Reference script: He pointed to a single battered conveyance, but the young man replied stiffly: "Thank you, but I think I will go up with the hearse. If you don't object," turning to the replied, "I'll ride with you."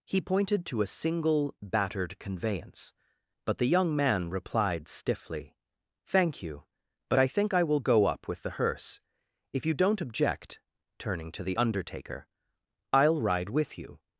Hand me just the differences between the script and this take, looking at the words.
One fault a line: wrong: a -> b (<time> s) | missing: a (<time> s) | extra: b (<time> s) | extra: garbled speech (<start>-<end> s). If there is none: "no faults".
wrong: replied -> undertaker (11.5 s)